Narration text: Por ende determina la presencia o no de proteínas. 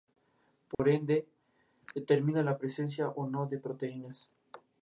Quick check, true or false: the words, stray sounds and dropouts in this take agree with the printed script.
false